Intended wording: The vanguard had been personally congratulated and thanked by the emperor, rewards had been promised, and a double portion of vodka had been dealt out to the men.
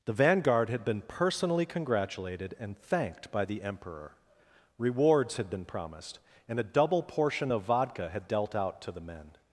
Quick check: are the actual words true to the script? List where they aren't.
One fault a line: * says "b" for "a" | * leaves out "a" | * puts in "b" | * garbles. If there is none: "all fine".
* leaves out "been"